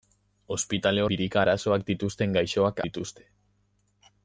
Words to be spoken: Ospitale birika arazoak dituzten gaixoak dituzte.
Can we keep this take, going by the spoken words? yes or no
yes